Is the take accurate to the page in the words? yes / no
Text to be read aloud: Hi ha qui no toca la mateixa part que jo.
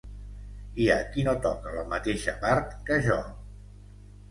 yes